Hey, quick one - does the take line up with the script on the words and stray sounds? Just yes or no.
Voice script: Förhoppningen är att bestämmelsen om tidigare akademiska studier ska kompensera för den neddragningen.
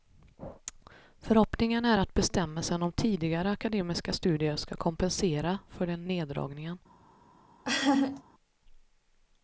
no